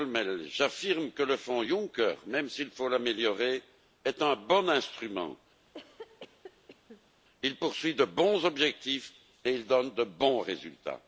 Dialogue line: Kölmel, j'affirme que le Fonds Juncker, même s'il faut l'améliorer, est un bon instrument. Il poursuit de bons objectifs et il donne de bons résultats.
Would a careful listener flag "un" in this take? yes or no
no